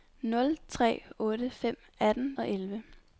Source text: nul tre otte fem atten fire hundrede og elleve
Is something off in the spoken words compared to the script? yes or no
yes